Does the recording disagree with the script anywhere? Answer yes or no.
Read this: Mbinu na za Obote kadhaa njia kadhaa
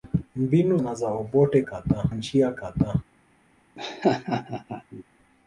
no